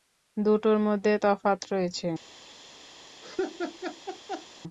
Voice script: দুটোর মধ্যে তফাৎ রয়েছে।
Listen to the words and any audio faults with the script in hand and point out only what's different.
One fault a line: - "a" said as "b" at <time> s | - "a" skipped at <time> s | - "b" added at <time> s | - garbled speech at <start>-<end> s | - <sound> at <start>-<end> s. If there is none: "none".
- laugh at 3.2-4.5 s